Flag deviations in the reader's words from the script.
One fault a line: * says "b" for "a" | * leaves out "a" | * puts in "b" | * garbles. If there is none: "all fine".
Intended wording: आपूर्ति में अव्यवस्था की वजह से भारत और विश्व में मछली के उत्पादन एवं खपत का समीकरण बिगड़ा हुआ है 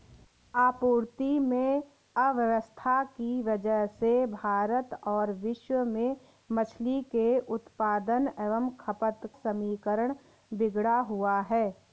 * leaves out "का"